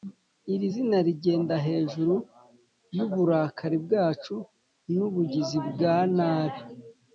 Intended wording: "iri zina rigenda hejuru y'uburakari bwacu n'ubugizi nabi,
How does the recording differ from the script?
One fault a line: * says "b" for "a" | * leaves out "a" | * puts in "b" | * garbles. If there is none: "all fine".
* puts in "bwa"